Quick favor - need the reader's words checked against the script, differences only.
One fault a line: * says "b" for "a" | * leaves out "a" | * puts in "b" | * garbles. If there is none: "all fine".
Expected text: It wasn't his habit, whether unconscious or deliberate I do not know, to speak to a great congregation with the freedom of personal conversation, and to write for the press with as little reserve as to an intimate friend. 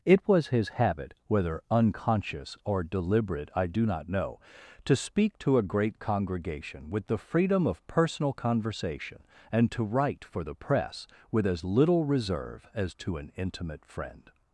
* says "was" for "wasn't"